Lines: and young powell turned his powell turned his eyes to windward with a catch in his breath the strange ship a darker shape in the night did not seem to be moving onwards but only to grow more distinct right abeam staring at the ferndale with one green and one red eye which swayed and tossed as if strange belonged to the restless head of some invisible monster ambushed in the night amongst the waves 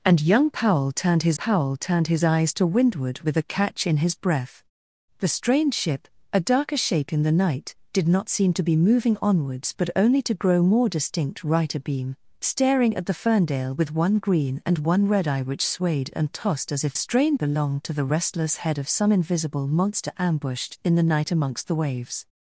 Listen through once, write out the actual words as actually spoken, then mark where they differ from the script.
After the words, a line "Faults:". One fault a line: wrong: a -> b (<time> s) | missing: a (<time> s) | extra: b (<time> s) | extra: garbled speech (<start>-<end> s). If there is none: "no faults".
and young powell turned his powell turned his eyes to windward with a catch in his breath the strange ship a darker shape in the night did not seem to be moving onwards but only to grow more distinct right abeam staring at the ferndale with one green and one red eye which swayed and tossed as if strange belonged to the restless head of some invisible monster ambushed in the night amongst the waves
Faults:
no faults